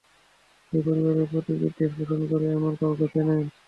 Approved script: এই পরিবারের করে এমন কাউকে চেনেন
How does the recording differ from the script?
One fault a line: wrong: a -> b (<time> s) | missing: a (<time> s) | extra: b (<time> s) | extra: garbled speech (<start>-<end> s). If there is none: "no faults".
extra: প্রতি বিদ্বেষ পোষণ (1.3 s)